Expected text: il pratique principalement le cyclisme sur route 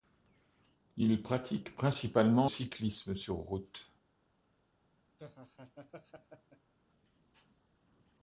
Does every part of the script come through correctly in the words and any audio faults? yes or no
no